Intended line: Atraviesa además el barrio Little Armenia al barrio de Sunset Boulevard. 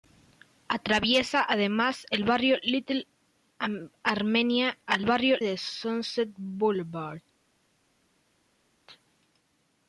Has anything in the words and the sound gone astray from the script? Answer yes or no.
no